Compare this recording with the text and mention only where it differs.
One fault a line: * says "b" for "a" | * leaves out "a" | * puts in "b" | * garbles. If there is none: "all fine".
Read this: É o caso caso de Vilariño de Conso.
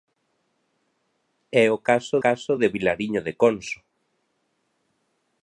all fine